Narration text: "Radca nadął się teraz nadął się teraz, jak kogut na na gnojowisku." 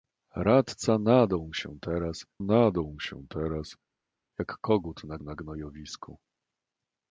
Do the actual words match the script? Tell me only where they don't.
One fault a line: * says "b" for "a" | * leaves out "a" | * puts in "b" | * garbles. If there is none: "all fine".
all fine